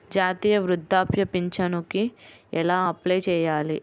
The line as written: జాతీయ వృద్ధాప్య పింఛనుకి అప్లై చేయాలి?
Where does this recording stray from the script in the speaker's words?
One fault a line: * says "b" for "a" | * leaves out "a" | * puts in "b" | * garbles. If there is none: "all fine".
* puts in "ఎలా"